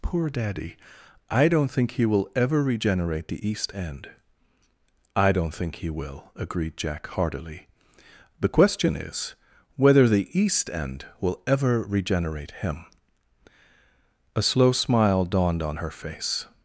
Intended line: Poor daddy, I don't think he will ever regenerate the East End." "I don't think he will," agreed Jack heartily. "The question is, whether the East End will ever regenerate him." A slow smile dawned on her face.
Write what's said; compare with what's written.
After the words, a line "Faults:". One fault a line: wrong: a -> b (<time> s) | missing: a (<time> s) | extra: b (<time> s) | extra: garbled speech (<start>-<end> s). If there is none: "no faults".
Poor daddy, I don't think he will ever regenerate the East End." "I don't think he will," agreed Jack heartily. "The question is, whether the East End will ever regenerate him." A slow smile dawned on her face.
Faults:
no faults